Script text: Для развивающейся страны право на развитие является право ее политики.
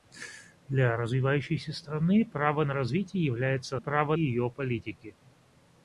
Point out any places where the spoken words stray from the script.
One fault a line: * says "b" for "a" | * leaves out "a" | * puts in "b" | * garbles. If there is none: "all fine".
all fine